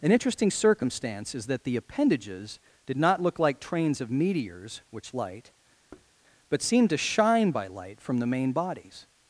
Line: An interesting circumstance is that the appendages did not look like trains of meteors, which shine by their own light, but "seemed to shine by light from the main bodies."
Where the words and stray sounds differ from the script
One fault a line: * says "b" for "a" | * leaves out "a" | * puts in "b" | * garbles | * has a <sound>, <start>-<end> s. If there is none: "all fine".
* leaves out "shine by their own"
* has a thud, 5.9-6.1 s